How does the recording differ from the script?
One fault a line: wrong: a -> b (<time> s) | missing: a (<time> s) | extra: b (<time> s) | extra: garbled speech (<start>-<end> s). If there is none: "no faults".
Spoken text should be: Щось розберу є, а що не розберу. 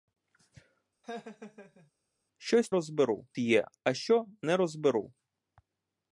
no faults